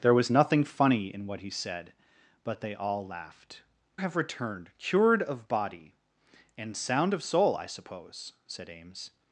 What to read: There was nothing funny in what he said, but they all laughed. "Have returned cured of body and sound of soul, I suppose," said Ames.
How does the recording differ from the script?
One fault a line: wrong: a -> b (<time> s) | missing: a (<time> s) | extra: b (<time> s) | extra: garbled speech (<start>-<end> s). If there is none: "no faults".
no faults